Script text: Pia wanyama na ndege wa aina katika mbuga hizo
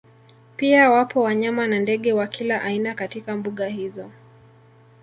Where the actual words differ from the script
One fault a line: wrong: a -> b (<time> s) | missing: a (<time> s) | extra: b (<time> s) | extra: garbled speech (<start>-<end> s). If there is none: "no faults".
extra: wapo (0.9 s)
extra: kila (2.3 s)